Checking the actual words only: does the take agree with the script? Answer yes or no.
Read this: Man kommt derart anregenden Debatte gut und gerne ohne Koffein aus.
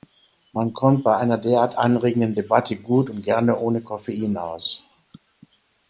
no